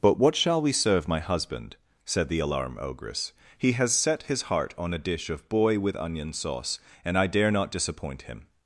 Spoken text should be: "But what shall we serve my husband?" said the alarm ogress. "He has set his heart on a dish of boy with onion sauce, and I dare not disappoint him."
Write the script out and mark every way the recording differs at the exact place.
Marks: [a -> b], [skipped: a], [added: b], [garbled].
"But what shall we serve my husband?" said the alarm ogress. "He has set his heart on a dish of boy with onion sauce, and I dare not disappoint him."